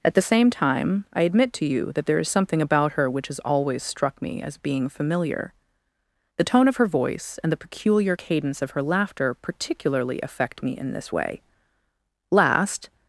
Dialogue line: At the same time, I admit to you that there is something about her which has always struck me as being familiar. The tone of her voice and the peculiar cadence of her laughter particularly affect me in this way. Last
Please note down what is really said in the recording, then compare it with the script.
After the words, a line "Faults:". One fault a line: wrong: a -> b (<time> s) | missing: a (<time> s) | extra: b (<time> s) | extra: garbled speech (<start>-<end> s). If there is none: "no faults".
At the same time, I admit to you that there is something about her which has always struck me as being familiar. The tone of her voice and the peculiar cadence of her laughter particularly affect me in this way. Last
Faults:
no faults